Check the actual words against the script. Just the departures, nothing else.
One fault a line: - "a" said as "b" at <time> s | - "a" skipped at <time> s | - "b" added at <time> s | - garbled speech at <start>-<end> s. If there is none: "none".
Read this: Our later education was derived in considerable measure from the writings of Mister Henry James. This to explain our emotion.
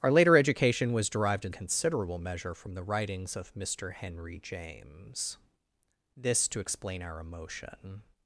none